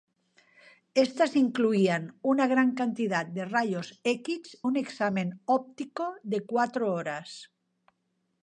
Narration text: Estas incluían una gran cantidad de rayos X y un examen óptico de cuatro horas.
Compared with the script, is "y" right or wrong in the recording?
wrong